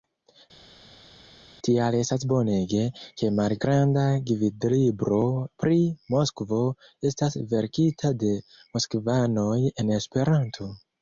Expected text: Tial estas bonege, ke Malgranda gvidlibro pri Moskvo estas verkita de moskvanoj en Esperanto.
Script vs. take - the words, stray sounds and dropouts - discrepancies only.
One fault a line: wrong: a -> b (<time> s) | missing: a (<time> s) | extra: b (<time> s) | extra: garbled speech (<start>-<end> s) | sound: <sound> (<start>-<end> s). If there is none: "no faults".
no faults